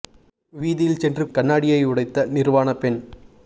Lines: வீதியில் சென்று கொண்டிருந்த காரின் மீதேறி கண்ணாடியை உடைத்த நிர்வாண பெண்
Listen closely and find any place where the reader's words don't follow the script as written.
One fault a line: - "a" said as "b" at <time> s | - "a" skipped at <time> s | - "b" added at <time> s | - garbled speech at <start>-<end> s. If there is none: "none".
- "கொண்டிருந்த காரின் மீதேறி" skipped at 1.2 s